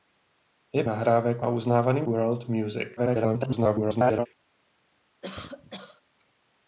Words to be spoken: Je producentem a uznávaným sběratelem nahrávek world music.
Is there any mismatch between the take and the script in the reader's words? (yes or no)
yes